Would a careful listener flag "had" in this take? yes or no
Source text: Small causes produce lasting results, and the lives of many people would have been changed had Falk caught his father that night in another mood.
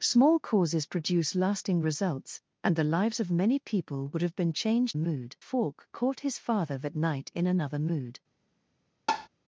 yes